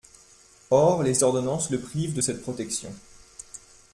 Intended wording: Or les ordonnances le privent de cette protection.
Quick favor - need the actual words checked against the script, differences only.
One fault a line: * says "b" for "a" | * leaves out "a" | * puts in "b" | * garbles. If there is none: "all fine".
all fine